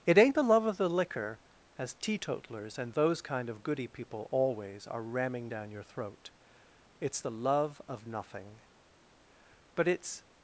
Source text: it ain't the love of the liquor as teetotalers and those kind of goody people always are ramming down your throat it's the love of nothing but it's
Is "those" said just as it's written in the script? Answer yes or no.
yes